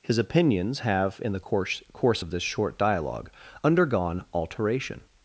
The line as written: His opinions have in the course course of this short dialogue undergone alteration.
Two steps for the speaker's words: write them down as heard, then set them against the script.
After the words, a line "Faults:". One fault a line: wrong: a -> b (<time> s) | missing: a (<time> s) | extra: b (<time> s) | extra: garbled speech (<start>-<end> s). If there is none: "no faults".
His opinions have in the course course of this short dialogue undergone alteration.
Faults:
no faults